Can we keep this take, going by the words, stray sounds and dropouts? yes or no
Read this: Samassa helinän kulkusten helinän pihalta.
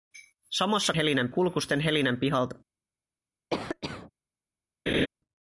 no